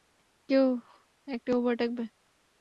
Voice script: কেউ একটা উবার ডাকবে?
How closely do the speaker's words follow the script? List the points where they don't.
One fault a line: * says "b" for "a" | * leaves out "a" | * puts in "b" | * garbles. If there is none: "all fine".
all fine